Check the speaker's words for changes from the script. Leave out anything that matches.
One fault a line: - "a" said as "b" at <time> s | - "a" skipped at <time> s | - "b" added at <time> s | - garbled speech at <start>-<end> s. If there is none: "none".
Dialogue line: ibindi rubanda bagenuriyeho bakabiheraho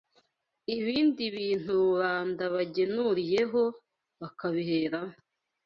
- "bintu" added at 1.4 s